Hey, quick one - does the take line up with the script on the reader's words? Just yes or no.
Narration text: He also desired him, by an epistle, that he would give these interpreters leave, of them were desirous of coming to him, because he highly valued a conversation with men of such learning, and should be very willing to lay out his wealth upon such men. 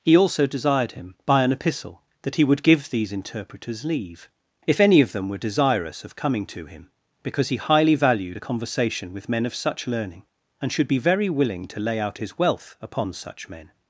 no